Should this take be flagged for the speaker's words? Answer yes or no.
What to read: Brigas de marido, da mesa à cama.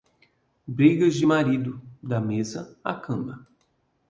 no